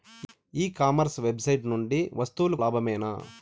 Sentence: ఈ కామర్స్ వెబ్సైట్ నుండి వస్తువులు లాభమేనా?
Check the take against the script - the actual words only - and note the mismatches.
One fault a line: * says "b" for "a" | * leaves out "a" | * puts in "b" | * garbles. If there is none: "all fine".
all fine